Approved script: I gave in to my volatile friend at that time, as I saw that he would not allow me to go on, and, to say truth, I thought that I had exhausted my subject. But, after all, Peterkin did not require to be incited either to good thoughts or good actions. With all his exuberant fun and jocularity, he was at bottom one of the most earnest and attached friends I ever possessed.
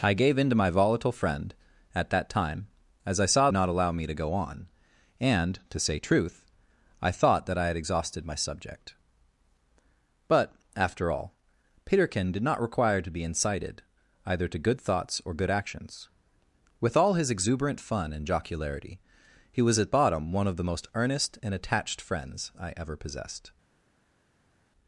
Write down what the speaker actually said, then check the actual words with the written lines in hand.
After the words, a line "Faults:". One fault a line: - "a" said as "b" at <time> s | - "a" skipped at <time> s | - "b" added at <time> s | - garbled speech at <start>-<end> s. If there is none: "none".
I gave in to my volatile friend at that time, as I saw not allow me to go on, and, to say truth, I thought that I had exhausted my subject. But, after all, Peterkin did not require to be incited either to good thoughts or good actions. With all his exuberant fun and jocularity, he was at bottom one of the most earnest and attached friends I ever possessed.
Faults:
- "that he would" skipped at 3.5 s